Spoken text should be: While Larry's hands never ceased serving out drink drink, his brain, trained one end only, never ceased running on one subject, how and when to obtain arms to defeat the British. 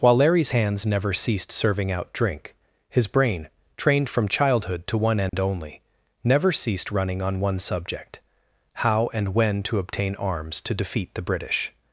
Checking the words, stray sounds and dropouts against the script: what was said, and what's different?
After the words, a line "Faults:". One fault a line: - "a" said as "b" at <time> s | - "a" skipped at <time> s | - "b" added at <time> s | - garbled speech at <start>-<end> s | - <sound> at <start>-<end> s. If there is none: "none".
While Larry's hands never ceased serving out drink, his brain, trained from childhood to one end only, never ceased running on one subject, how and when to obtain arms to defeat the British.
Faults:
- "drink" skipped at 2.5 s
- "from childhood to" added at 4.1 s
- dropout at 5.3-5.3 s